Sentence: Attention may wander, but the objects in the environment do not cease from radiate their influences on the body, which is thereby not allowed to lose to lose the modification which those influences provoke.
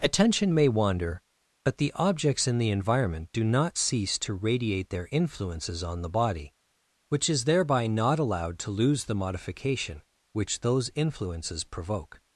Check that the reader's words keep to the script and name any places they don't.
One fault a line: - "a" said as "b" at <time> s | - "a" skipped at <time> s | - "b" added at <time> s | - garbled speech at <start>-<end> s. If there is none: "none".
- "from" said as "to" at 4.2 s
- "to lose" skipped at 9.0 s